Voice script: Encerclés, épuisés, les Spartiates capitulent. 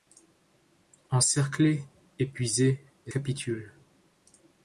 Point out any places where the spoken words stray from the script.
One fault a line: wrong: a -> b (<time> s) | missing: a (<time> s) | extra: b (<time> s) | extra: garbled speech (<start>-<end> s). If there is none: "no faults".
missing: Spartiates (3.1 s)